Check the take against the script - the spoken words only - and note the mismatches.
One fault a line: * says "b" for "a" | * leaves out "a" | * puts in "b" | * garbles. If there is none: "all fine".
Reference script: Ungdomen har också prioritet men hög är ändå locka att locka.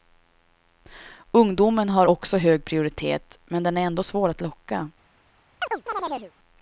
* puts in "hög"
* says "den" for "hög"
* says "svår" for "locka"